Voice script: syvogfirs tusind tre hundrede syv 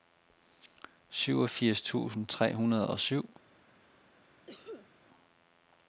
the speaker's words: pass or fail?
fail